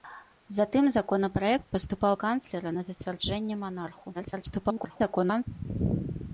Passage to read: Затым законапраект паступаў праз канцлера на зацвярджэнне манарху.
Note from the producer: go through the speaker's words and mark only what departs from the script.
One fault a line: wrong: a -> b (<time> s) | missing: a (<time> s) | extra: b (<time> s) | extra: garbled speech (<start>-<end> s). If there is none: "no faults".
missing: праз (2.1 s)
extra: garbled speech (4.1-5.5 s)